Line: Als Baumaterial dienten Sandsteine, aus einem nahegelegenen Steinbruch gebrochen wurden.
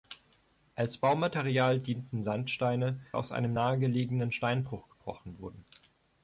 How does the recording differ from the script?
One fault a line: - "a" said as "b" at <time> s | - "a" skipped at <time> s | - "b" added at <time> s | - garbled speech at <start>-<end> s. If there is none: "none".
none